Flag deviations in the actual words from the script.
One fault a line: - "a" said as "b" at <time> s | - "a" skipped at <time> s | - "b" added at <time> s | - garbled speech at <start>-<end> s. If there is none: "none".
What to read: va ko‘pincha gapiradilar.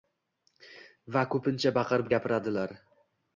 - "baqirib" added at 1.8 s